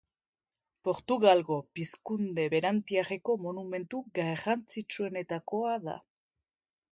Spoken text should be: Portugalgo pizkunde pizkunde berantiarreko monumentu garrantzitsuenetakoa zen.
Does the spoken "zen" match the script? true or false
false